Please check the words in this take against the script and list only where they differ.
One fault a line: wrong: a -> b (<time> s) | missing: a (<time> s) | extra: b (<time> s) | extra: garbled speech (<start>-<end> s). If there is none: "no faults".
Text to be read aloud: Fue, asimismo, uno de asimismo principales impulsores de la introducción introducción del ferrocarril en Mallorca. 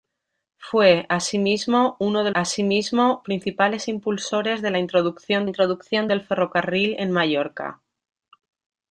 no faults